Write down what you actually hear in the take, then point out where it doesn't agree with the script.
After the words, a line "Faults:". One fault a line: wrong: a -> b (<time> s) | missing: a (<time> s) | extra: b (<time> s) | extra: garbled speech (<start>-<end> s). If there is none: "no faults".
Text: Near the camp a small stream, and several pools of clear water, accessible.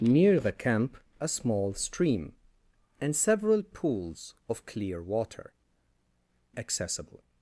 Near the camp a small stream, and several pools of clear water, accessible.
Faults:
no faults